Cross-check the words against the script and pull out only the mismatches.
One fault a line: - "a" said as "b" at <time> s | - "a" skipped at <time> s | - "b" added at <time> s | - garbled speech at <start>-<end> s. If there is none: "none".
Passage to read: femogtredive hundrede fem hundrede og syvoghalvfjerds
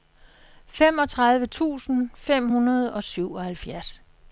- "hundrede" said as "tusind" at 1.5 s